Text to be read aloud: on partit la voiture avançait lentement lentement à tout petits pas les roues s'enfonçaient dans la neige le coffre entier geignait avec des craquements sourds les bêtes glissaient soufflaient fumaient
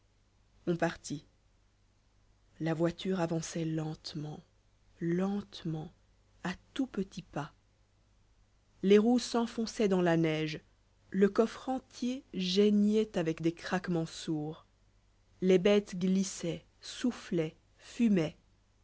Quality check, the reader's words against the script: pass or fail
pass